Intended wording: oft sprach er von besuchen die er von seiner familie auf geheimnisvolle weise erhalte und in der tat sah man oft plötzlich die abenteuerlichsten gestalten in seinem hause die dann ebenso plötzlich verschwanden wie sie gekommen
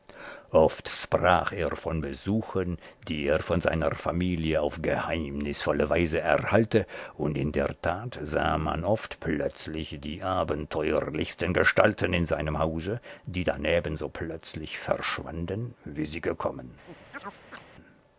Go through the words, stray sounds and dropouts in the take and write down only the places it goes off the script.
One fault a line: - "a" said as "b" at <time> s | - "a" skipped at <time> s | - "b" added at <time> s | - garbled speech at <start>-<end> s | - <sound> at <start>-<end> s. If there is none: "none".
- chirp at 16.9-17.7 s